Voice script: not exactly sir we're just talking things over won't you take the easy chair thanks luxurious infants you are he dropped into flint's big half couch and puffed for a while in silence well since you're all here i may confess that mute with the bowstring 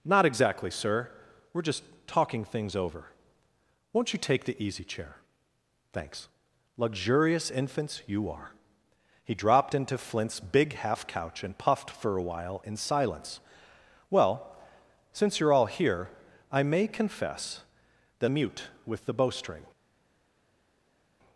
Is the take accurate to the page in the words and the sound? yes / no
yes